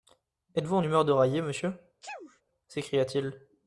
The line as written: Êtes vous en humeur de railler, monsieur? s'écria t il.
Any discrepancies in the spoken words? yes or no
no